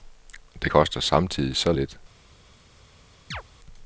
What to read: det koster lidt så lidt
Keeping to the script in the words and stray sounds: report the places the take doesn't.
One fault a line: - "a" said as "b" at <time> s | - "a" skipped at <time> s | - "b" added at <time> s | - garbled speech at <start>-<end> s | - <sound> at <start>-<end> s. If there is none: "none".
- "lidt" said as "samtidig" at 1.0 s
- chirp at 3.3-3.4 s